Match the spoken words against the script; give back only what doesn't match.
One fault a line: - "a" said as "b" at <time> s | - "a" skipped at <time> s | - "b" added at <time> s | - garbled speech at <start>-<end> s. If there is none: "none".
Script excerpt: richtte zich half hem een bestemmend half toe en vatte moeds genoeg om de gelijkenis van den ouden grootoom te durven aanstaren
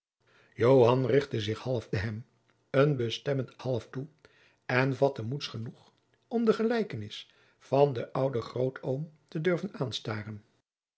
none